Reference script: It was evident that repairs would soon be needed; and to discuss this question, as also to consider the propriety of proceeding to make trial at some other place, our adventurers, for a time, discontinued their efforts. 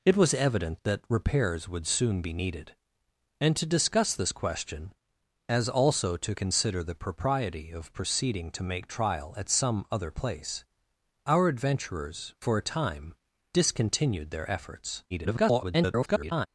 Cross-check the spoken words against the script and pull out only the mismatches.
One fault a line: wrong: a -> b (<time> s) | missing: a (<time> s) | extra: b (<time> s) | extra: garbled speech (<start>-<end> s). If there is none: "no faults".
extra: garbled speech (15.1-16.5 s)